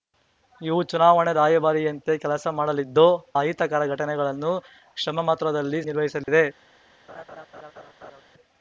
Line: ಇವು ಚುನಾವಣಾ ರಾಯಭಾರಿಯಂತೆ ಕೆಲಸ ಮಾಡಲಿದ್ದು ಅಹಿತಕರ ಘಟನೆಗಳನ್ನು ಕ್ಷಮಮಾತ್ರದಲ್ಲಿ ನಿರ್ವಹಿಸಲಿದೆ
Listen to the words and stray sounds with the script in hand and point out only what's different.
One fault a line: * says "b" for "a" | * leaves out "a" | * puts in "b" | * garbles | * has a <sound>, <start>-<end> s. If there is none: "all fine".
* has a dropout, 6.2-6.3 s
* has a laugh, 7.1-8.2 s